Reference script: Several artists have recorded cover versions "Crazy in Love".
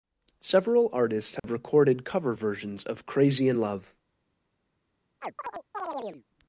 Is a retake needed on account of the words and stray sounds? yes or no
yes